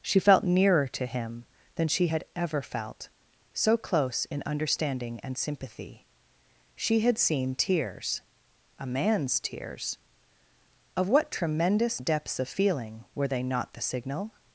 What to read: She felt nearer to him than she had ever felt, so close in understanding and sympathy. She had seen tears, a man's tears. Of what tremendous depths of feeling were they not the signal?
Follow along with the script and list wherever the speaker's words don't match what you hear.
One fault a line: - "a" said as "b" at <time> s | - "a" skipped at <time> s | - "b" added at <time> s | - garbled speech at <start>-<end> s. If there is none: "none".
none